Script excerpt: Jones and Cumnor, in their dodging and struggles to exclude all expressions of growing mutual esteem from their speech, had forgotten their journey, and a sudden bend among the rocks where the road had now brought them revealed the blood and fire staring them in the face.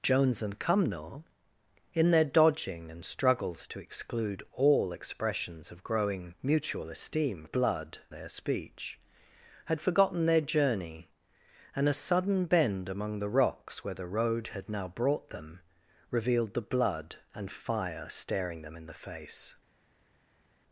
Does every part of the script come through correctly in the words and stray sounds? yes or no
no